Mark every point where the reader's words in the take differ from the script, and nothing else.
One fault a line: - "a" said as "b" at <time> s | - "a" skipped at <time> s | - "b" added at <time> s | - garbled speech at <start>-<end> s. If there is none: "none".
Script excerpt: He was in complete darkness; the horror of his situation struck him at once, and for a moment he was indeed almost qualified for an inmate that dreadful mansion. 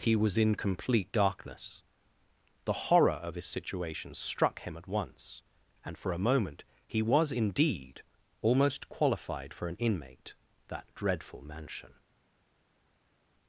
none